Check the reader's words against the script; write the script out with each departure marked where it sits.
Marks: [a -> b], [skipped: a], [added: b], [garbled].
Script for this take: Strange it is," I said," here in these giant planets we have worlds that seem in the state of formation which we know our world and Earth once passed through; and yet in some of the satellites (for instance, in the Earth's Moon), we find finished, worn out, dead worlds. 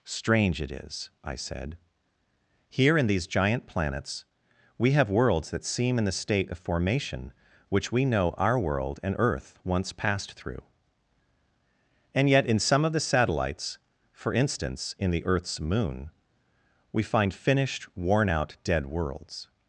Strange it is," I said," here in these giant planets we have worlds that seem in the state of formation which we know our world and Earth once passed through; and yet in some of the satellites (for instance, in the Earth's Moon), we find finished, worn out, dead worlds.